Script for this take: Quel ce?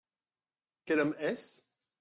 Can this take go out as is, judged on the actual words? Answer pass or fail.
fail